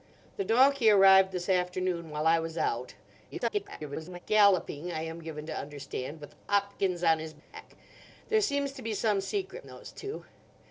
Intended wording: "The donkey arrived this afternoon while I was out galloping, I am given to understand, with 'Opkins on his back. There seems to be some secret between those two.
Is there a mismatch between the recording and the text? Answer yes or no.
yes